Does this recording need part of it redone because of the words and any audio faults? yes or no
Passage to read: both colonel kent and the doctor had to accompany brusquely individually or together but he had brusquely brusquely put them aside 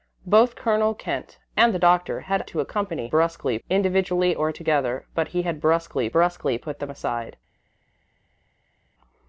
no